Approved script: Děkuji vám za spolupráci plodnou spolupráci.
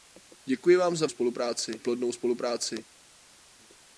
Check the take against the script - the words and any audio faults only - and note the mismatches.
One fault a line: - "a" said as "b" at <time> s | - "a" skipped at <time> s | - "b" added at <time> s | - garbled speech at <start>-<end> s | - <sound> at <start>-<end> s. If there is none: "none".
none